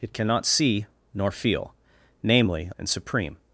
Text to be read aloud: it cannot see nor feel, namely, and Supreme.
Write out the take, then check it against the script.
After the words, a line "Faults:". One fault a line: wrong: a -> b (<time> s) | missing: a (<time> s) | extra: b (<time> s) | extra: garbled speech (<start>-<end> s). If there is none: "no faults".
it cannot see nor feel, namely, and Supreme.
Faults:
no faults